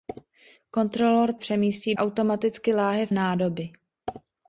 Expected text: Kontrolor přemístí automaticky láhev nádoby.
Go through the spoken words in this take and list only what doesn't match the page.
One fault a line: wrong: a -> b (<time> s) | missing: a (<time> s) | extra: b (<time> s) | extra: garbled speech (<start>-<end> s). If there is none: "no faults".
no faults